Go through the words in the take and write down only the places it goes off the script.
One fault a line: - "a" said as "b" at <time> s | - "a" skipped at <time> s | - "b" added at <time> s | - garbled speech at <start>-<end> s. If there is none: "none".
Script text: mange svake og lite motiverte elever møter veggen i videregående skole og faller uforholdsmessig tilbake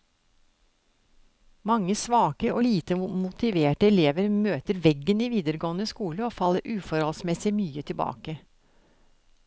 - "mye" added at 7.6 s